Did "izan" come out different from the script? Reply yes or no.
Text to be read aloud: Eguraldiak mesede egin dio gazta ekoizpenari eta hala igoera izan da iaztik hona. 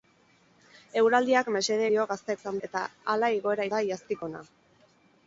yes